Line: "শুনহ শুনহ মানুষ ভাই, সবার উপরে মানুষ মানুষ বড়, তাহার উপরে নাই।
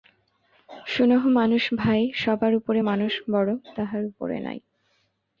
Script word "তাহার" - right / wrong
right